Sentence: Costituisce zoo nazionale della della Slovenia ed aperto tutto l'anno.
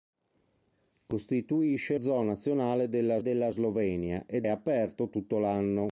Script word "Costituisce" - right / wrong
right